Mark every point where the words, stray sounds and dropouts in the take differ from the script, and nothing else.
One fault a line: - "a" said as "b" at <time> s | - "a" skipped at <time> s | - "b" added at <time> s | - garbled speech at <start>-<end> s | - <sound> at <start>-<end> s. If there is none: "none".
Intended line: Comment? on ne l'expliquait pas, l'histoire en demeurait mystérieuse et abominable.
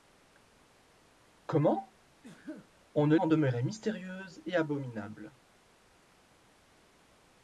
- sneeze at 2.2-2.7 s
- "l'expliquait pas l'histoire" skipped at 3.1 s